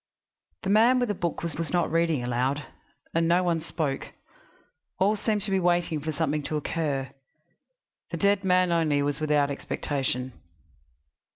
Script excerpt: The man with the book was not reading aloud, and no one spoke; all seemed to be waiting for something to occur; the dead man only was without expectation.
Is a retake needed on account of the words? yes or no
yes